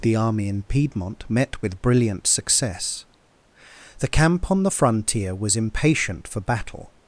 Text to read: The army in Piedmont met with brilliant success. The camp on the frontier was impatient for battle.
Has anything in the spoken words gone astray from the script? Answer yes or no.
no